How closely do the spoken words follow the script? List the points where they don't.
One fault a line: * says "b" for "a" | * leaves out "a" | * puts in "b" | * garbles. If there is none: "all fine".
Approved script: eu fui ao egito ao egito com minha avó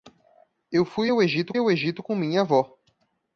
all fine